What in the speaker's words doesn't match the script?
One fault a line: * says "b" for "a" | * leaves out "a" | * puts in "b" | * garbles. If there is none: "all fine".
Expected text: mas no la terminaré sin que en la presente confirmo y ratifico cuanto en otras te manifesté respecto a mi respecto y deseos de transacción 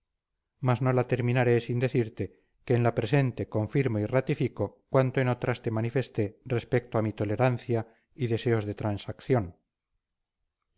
* puts in "decirte"
* says "tolerancia" for "respecto"